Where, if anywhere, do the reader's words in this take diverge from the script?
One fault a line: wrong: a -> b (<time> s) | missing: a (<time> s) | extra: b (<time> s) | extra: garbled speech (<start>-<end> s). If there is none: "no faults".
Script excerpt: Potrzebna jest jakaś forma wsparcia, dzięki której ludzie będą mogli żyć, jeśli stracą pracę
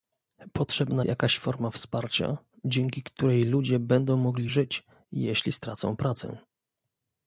missing: jest (1.1 s)